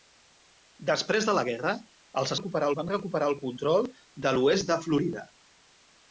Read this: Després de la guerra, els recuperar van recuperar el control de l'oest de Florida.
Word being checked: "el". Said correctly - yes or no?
yes